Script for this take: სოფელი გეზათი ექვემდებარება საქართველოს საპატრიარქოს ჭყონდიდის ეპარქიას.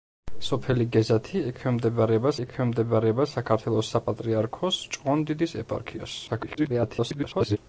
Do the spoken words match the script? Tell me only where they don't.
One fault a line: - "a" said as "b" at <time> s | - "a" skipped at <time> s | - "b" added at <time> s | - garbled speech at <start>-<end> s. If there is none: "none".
- "ექვემდებარება" added at 2.4 s
- garbled speech at 6.3-7.6 s